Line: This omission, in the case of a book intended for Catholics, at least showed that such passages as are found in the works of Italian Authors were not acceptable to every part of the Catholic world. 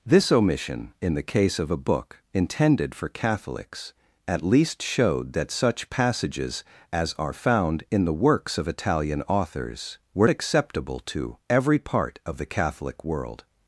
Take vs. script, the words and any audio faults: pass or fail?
fail